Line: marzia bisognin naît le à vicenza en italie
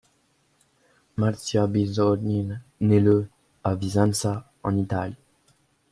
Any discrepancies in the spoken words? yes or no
no